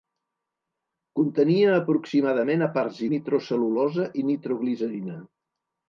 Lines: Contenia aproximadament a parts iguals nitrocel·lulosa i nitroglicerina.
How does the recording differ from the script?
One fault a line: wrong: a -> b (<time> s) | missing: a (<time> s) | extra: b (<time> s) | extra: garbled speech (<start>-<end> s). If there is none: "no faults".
missing: iguals (3.0 s)